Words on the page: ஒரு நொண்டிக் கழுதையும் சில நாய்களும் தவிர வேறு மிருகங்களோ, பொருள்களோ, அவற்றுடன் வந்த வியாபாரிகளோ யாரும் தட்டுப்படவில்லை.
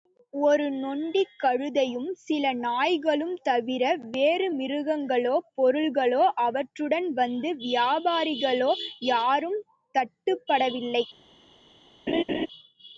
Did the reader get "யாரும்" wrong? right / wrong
right